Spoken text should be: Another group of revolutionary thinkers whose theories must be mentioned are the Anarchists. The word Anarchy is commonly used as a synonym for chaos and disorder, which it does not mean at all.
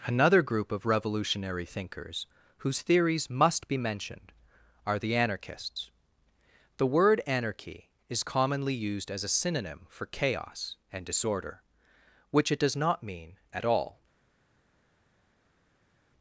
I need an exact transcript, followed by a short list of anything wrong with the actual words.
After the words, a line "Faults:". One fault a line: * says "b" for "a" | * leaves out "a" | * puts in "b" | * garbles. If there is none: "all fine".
Another group of revolutionary thinkers whose theories must be mentioned are the Anarchists. The word Anarchy is commonly used as a synonym for chaos and disorder, which it does not mean at all.
Faults:
all fine